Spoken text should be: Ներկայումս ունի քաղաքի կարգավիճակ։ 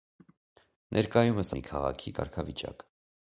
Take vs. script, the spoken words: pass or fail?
pass